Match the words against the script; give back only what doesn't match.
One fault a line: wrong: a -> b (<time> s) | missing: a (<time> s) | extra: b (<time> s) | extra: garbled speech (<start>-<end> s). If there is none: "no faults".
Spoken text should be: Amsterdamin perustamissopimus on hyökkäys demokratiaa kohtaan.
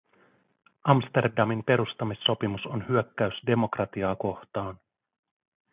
no faults